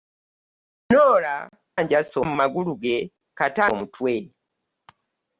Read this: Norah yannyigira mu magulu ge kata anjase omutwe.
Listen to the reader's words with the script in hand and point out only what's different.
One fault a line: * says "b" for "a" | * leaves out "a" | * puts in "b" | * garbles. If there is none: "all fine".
* says "anjase" for "yannyigira"
* leaves out "anjase"